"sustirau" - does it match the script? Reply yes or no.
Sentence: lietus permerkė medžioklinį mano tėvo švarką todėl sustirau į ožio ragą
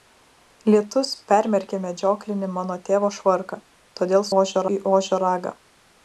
no